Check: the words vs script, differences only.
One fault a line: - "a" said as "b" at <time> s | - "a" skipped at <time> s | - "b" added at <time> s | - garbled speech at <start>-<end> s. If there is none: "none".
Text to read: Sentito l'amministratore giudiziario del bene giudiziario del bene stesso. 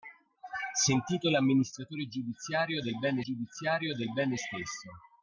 none